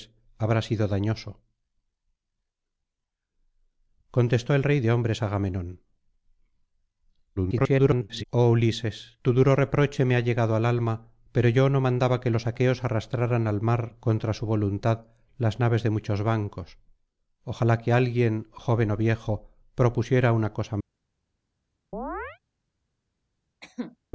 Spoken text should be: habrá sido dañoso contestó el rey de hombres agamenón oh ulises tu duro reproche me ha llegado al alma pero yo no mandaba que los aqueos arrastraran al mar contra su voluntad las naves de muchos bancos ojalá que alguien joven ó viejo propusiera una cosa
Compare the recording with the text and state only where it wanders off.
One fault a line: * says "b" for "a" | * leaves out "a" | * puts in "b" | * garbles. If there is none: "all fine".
* garbles